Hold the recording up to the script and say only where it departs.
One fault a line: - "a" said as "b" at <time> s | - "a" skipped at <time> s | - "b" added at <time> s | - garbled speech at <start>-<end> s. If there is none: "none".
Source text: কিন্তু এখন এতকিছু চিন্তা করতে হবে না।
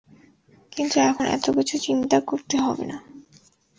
none